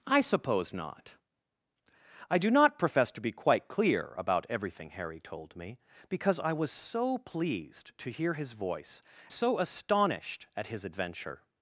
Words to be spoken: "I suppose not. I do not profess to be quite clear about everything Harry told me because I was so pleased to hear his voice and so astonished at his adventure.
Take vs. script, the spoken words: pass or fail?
fail